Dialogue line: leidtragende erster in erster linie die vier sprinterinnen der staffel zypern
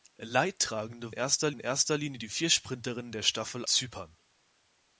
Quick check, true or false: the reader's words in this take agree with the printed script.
true